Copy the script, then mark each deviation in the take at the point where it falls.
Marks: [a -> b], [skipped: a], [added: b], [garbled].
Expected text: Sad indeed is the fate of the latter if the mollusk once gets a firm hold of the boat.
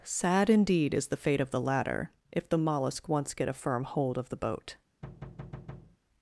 Sad indeed is the fate of the latter if the mollusk once [gets -> get] a firm hold of the boat.